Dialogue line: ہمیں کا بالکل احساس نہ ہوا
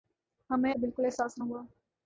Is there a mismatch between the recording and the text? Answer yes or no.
no